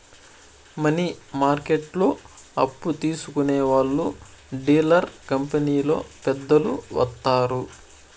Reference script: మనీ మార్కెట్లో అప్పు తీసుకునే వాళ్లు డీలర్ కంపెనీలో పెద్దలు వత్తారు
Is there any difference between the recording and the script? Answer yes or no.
no